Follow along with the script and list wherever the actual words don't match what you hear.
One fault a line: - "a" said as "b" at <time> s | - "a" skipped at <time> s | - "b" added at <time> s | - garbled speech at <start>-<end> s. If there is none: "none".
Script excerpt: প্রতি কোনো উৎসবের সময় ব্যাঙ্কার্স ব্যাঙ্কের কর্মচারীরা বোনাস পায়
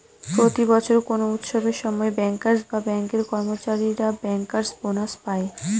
- "বছর" added at 0.7 s
- "বা" added at 2.7 s
- "ব্যাঙ্কার্স" added at 4.2 s